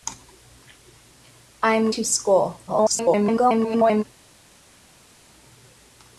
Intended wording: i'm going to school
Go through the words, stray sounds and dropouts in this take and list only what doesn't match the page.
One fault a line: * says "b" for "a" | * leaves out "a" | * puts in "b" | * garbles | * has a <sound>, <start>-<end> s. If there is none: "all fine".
* leaves out "going"
* garbles